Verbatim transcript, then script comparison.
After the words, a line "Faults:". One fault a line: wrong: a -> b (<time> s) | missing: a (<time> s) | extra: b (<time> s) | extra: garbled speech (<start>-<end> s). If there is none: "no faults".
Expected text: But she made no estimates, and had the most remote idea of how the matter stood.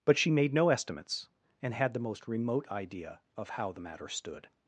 But she made no estimates, and had the most remote idea of how the matter stood.
Faults:
no faults